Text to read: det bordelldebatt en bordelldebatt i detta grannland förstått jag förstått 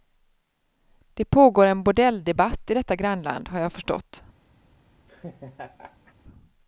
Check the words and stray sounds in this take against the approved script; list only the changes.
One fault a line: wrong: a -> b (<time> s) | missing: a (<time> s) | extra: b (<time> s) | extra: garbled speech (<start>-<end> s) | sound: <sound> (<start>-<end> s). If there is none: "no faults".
wrong: bordelldebatt -> pågår (1.2 s)
wrong: förstått -> har (3.5 s)
sound: laugh (5.1-6.1 s)